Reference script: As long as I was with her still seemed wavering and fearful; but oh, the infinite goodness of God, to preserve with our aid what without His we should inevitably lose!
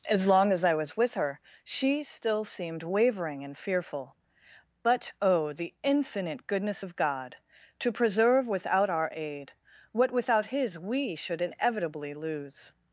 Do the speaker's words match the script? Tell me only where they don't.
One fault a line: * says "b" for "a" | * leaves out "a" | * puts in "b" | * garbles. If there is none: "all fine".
* puts in "she"
* says "without" for "with"